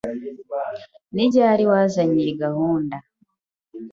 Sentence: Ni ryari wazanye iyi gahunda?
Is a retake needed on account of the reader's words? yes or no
no